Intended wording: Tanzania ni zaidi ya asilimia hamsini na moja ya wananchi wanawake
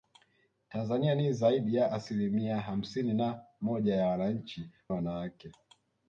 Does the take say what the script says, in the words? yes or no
yes